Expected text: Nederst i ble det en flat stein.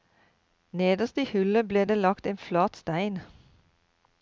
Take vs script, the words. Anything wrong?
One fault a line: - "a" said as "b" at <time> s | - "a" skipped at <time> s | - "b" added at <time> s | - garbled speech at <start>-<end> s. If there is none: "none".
- "hullet" added at 1.3 s
- "lagt" added at 2.0 s